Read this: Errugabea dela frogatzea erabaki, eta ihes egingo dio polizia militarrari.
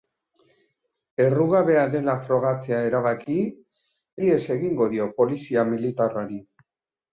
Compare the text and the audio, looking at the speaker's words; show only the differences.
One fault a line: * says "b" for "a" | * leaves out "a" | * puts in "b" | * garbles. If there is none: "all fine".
* leaves out "eta"